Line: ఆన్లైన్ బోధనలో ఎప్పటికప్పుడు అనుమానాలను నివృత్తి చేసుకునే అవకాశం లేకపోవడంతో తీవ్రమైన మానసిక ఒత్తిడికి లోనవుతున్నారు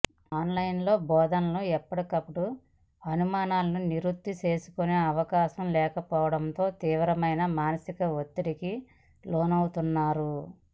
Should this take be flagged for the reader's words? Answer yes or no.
no